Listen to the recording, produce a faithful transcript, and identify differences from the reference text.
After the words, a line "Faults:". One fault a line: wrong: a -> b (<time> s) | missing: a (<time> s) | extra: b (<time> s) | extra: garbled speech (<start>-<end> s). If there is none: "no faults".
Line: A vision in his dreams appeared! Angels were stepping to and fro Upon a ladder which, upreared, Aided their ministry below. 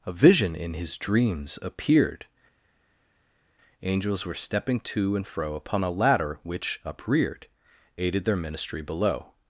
A vision in his dreams appeared! Angels were stepping to and fro Upon a ladder which, upreared, Aided their ministry below.
Faults:
no faults